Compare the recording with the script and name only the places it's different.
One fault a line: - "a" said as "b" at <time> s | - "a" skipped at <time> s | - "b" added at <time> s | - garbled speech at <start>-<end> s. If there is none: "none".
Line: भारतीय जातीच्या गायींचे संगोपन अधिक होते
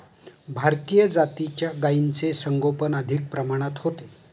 - "प्रमाणात" added at 3.3 s